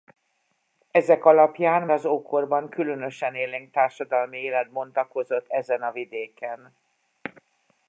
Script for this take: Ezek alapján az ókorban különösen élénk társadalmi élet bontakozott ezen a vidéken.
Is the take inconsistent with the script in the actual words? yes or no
no